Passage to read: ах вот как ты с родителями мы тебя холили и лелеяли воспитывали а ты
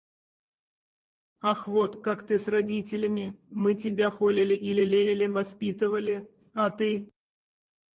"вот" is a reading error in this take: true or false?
false